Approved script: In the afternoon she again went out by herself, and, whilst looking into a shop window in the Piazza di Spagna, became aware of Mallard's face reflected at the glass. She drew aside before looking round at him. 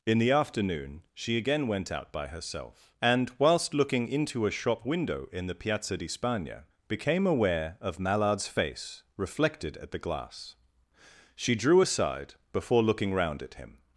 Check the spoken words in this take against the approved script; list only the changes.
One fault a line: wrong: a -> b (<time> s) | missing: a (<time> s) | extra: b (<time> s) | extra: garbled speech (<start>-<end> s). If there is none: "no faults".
no faults